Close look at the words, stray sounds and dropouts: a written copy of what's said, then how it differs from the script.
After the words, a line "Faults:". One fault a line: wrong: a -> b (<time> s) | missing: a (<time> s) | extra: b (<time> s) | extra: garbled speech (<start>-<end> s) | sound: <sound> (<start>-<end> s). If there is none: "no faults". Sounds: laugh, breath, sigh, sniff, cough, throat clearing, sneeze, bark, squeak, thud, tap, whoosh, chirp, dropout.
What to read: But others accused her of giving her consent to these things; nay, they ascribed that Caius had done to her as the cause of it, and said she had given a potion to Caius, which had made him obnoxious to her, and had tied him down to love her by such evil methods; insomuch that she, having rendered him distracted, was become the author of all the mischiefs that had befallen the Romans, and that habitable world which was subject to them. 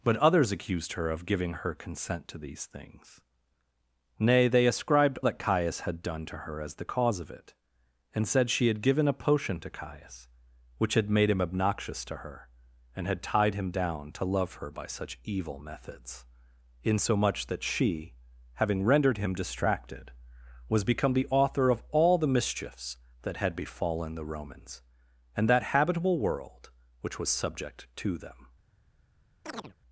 But others accused her of giving her consent to these things; nay, they ascribed that Caius had done to her as the cause of it, and said she had given a potion to Caius, which had made him obnoxious to her, and had tied him down to love her by such evil methods; insomuch that she, having rendered him distracted, was become the author of all the mischiefs that had befallen the Romans, and that habitable world which was subject to them.
Faults:
sound: chirp (29.4-29.8 s)